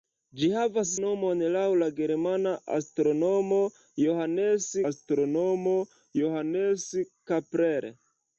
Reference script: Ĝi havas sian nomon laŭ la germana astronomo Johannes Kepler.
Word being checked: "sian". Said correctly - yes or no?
no